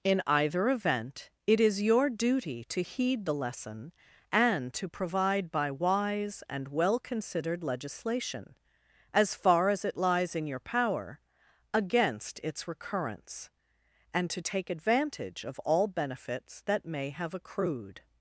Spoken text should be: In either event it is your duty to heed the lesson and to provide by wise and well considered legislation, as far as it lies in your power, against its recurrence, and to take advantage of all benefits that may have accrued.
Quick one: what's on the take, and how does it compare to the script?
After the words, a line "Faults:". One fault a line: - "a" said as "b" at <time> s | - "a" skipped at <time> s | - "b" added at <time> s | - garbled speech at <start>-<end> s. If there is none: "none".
In either event it is your duty to heed the lesson and to provide by wise and well considered legislation, as far as it lies in your power, against its recurrence, and to take advantage of all benefits that may have accrued.
Faults:
none